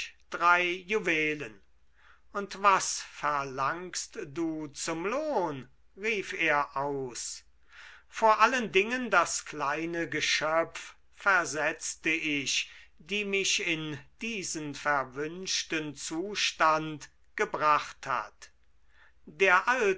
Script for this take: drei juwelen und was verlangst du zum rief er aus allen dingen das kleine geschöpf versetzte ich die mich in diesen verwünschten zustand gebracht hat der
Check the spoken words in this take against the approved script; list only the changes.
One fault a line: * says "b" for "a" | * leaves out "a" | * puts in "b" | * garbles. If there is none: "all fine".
* puts in "lohn"
* puts in "vor"